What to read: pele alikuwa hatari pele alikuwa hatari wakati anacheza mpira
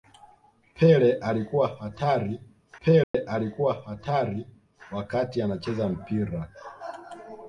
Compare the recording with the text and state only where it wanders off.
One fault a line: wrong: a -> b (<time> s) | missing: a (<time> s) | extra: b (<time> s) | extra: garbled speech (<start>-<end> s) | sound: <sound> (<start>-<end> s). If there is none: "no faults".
sound: dropout (3.0-3.1 s)